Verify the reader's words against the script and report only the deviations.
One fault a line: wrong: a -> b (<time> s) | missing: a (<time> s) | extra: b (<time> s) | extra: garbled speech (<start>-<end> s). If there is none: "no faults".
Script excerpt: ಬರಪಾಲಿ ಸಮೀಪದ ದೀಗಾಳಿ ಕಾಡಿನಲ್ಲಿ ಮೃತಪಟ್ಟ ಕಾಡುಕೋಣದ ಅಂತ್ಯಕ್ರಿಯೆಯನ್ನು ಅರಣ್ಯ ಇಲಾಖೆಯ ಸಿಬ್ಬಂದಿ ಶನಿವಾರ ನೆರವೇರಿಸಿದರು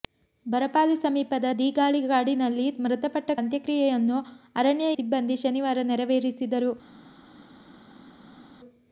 missing: ಕಾಡುಕೋಣದ (3.3 s)
missing: ಇಲಾಖೆಯ (4.9 s)